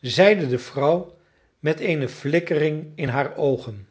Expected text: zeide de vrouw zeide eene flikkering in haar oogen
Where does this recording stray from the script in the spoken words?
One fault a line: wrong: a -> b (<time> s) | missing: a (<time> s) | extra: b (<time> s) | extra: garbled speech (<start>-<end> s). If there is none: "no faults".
wrong: zeide -> met (1.6 s)